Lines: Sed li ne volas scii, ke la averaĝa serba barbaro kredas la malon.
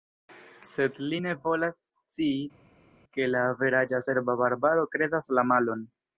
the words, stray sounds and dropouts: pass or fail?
pass